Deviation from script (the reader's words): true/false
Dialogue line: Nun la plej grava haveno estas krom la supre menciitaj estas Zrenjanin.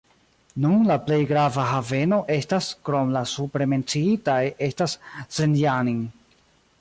false